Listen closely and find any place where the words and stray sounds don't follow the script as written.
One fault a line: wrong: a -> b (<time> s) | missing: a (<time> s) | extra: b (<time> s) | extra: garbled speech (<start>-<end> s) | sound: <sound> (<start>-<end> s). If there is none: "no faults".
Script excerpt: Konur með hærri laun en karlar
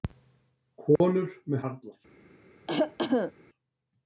sound: dropout (1.0-1.0 s)
missing: hærri laun en (1.6 s)
sound: cough (2.7-3.3 s)